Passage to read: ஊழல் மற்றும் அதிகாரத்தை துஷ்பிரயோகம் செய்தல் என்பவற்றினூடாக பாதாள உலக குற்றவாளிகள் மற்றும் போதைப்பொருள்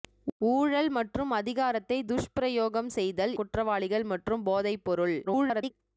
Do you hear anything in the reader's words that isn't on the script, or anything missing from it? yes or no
yes